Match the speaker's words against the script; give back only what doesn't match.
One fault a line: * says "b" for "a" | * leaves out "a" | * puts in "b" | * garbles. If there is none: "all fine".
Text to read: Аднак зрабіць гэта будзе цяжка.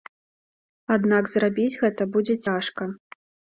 all fine